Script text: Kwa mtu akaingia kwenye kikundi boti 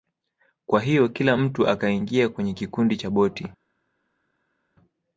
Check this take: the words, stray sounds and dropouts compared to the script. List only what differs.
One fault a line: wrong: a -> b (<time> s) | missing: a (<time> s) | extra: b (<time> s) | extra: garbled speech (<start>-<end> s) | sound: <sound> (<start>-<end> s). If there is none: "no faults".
extra: hiyo kila (0.8 s)
extra: cha (2.9 s)